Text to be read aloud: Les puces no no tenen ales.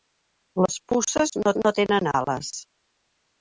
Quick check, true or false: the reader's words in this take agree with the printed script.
true